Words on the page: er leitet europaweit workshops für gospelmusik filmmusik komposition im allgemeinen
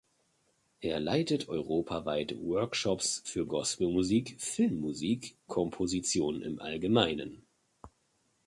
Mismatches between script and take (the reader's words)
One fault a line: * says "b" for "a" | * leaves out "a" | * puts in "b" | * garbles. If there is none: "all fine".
all fine